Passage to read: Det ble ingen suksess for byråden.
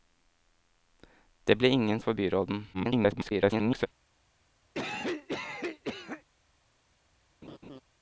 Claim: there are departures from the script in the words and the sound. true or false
true